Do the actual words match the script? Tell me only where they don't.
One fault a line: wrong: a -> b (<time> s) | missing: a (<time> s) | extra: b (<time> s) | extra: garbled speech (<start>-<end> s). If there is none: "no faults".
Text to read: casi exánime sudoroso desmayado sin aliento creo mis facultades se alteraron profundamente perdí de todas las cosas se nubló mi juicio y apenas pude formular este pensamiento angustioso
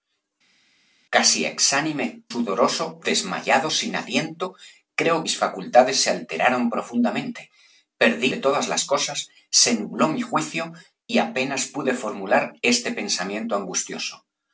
no faults